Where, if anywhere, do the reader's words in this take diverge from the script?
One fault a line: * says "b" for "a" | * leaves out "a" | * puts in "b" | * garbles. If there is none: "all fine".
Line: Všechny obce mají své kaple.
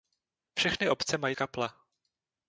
* leaves out "své"